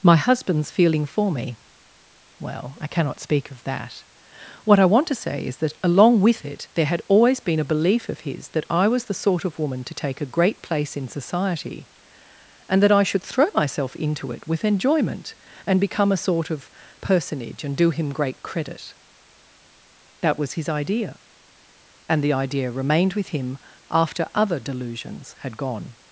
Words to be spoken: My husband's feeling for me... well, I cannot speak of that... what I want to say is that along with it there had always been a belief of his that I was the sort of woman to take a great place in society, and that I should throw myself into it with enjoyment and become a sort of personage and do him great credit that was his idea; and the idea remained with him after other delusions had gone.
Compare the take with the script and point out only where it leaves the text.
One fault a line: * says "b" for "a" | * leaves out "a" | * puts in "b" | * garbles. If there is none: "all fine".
all fine